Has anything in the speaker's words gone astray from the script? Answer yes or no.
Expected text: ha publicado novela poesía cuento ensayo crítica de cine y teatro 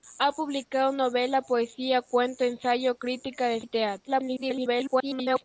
yes